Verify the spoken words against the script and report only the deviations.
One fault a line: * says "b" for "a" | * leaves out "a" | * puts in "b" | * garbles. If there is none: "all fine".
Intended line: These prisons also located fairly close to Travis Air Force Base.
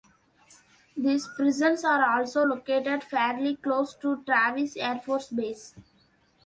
* puts in "are"